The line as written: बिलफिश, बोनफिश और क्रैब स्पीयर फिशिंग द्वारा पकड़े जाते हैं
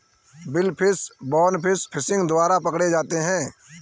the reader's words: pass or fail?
fail